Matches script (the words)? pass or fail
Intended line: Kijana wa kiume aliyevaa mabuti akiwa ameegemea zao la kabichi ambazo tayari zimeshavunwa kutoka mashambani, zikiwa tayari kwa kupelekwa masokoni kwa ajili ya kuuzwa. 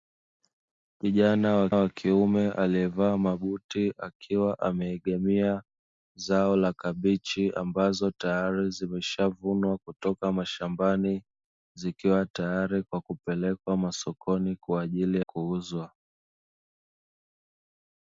fail